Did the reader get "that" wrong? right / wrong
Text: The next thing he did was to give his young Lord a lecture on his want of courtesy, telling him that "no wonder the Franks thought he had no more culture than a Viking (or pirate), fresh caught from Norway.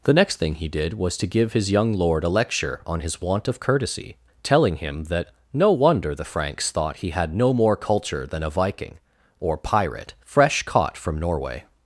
right